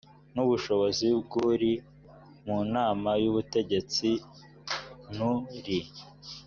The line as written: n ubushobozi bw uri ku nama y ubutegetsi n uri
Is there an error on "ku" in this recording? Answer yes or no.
yes